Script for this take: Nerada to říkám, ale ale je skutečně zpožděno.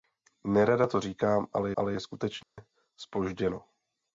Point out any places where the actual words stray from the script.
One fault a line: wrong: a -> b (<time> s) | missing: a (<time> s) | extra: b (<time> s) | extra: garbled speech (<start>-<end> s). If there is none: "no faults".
no faults